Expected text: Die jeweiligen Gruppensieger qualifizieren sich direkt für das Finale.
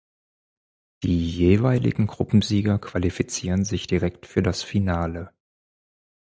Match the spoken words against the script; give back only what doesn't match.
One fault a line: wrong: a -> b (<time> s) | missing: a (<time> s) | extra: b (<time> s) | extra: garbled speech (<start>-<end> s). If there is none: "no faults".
no faults